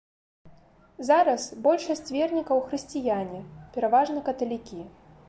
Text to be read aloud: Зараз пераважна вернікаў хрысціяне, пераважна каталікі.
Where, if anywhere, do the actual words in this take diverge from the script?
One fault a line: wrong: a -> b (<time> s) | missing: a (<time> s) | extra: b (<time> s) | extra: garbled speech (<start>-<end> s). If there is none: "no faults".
wrong: пераважна -> большасць (1.7 s)